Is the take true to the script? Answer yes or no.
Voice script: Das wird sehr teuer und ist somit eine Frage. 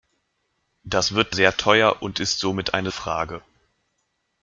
yes